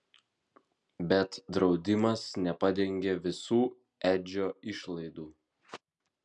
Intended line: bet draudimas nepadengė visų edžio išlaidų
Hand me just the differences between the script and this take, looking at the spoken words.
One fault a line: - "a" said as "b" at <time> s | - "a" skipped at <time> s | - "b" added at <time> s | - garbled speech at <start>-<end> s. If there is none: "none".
none